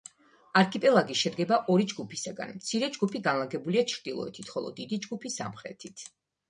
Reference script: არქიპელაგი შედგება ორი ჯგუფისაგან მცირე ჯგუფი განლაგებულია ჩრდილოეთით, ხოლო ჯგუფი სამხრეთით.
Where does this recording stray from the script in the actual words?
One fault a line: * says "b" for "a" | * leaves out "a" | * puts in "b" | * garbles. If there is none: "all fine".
* puts in "დიდი"